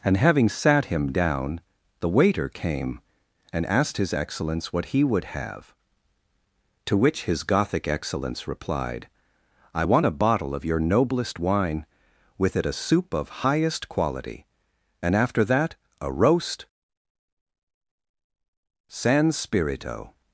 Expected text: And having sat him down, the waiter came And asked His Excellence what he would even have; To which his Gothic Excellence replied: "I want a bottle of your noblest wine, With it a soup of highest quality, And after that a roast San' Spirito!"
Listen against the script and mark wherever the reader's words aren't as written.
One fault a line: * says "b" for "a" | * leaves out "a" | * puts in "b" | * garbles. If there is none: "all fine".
* leaves out "even"